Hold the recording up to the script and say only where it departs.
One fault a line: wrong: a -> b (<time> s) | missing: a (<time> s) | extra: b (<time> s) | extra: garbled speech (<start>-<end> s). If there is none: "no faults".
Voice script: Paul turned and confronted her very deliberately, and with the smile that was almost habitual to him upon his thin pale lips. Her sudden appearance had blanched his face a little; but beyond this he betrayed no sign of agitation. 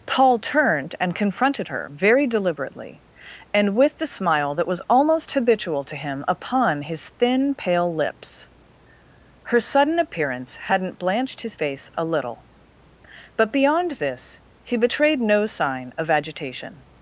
wrong: had -> hadn't (10.6 s)